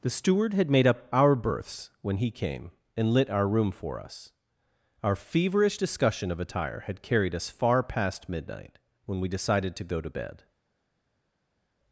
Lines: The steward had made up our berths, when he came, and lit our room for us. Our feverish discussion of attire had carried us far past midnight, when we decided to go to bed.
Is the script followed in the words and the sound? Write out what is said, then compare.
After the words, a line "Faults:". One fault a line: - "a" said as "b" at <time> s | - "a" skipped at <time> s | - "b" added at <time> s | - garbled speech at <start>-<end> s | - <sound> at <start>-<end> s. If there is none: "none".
The steward had made up our berths, when he came, and lit our room for us. Our feverish discussion of attire had carried us far past midnight, when we decided to go to bed.
Faults:
none